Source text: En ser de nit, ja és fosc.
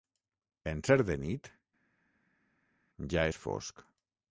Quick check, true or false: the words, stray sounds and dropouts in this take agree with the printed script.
true